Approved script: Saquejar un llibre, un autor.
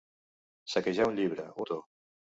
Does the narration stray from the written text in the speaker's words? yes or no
yes